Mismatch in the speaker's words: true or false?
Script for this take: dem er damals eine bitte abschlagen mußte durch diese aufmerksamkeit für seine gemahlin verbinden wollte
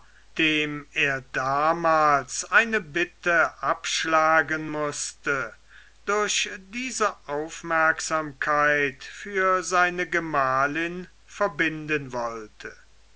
false